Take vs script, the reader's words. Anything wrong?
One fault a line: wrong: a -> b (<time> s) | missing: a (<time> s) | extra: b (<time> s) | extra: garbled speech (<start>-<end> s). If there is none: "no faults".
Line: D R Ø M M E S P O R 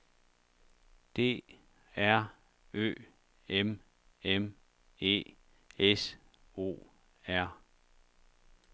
missing: P (6.1 s)